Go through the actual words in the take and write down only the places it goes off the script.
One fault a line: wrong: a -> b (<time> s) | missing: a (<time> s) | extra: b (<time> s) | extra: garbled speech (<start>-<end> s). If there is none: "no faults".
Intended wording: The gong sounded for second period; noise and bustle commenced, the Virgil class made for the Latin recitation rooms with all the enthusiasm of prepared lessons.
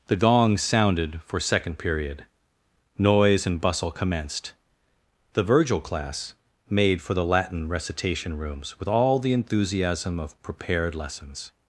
no faults